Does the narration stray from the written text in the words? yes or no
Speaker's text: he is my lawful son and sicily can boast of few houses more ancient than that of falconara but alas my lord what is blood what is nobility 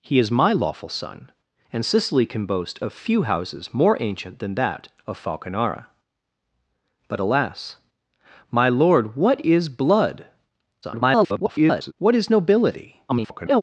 yes